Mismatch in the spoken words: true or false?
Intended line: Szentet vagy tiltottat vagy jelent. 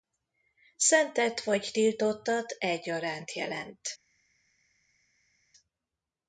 true